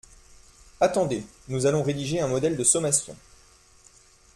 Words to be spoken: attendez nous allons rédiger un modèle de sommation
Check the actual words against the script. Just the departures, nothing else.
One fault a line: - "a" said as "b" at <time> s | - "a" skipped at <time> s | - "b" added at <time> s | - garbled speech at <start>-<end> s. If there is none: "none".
none